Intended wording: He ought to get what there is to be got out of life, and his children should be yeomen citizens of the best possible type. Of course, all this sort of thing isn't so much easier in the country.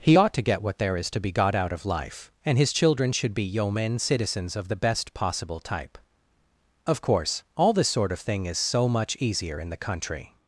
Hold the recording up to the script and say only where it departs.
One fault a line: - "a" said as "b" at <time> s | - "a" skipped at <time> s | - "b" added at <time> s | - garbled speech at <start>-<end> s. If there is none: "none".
- "isn't" said as "is" at 8.5 s